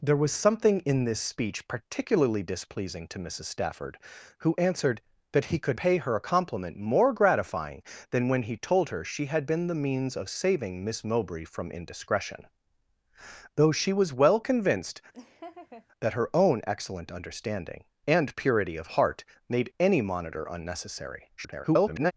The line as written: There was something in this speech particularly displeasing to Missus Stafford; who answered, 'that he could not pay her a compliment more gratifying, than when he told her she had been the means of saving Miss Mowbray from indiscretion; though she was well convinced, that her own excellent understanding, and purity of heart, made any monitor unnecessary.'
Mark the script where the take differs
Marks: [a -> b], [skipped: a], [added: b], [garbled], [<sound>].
There was something in this speech particularly displeasing to Missus Stafford; who answered, 'that he could [skipped: not] pay her a compliment more gratifying, than when he told her she had been the means of saving Miss Mowbray from indiscretion; though she was well convinced, [laugh] that her own excellent understanding, and purity of heart, made any monitor unnecessary.' [garbled]